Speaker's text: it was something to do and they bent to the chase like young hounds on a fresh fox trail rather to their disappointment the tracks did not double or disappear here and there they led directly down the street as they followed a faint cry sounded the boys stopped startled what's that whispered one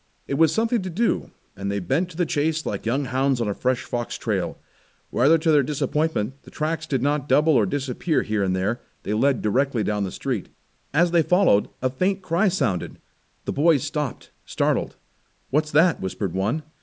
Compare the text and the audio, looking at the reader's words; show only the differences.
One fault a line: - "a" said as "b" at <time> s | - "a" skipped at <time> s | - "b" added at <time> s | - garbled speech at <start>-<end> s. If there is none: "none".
none